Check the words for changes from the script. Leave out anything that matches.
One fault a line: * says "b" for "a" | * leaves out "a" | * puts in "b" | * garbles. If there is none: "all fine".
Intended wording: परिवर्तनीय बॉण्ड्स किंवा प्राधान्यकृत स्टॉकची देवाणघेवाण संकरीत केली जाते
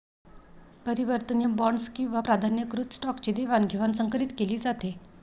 all fine